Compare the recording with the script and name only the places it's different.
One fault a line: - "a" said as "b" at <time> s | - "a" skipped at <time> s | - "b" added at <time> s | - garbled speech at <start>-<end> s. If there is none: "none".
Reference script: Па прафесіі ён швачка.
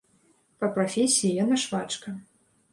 - "ён" said as "яна" at 1.4 s